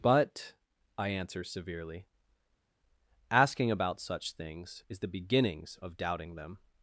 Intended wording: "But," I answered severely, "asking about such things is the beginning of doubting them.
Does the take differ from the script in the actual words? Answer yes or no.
yes